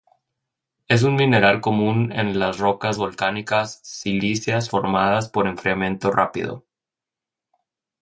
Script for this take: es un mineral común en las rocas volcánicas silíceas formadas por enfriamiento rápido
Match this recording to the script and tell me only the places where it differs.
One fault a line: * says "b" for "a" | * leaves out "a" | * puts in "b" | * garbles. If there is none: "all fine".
all fine